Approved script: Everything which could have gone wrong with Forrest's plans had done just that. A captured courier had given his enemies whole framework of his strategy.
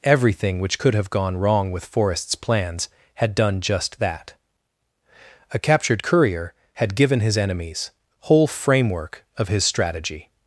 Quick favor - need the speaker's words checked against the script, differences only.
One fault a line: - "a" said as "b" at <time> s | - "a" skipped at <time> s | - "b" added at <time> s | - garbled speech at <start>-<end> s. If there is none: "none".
none